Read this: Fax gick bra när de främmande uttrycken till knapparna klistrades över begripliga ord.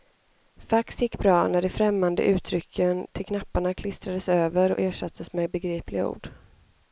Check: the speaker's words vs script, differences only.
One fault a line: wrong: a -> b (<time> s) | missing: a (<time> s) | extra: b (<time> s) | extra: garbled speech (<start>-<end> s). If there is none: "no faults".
extra: och ersattes med (4.7 s)